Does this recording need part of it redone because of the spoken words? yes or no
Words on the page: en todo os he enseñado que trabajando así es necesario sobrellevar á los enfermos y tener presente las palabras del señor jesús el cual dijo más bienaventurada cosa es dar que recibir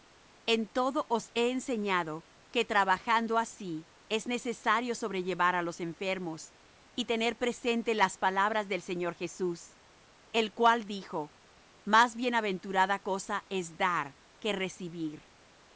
no